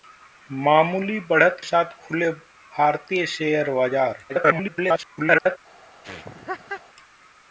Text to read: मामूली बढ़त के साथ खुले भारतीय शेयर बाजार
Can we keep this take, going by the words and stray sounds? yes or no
no